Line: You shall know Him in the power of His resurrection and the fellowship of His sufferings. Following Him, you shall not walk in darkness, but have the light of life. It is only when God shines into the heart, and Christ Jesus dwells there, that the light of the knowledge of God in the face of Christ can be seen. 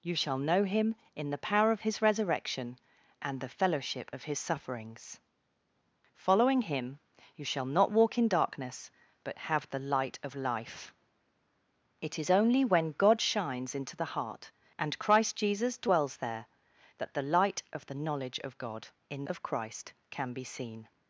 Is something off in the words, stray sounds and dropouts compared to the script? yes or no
yes